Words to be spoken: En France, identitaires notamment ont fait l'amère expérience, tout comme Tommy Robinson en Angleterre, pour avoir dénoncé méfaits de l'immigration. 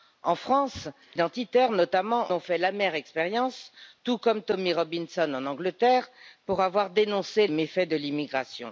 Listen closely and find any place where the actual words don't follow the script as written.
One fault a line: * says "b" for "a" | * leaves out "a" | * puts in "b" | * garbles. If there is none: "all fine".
all fine